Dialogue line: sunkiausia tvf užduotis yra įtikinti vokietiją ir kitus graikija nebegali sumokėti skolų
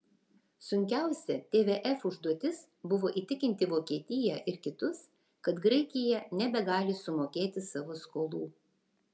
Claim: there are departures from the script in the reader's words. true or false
true